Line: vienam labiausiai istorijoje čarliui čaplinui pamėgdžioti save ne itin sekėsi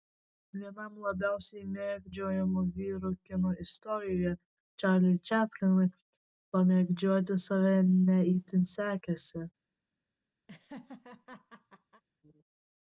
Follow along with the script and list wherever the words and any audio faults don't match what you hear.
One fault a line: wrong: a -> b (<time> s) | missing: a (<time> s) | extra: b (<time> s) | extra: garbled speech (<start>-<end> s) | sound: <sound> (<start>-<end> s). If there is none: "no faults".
extra: mėgdžiojamų vyrų kino (1.7 s)
sound: laugh (10.5-12.0 s)